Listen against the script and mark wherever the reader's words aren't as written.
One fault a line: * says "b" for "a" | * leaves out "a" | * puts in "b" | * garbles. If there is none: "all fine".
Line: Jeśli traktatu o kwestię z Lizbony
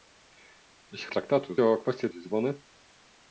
all fine